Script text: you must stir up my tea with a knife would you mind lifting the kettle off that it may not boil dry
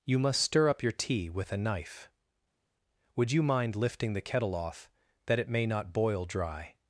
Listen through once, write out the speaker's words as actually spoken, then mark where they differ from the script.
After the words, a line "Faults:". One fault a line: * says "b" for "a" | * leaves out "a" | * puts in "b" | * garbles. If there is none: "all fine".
you must stir up your tea with a knife would you mind lifting the kettle off that it may not boil dry
Faults:
* says "your" for "my"